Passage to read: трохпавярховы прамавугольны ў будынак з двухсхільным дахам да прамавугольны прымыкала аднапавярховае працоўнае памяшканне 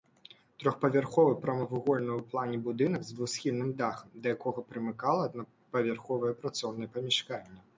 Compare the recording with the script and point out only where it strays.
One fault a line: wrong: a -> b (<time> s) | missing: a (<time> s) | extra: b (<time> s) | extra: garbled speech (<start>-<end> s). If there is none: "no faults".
extra: плане (2.3 s)
wrong: прамавугольны -> якога (4.4 s)